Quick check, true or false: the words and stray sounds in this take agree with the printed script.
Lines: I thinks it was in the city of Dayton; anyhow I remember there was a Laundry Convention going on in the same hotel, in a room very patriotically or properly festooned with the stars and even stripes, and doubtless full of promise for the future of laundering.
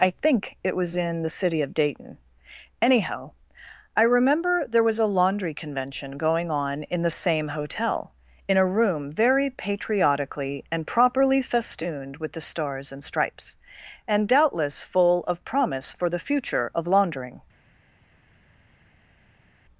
false